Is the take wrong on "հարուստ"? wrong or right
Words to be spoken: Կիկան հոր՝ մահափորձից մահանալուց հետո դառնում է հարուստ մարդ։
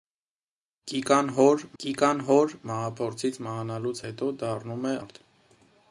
wrong